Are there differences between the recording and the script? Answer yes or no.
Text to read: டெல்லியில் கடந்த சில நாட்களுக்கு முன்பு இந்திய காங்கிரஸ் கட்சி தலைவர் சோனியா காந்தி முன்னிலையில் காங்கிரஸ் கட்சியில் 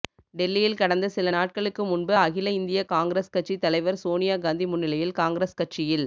yes